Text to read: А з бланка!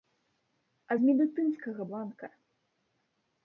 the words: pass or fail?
fail